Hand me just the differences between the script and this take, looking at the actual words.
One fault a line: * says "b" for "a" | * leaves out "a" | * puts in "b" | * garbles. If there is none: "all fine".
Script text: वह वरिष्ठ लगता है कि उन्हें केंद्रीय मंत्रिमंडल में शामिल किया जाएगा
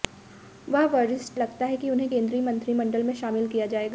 all fine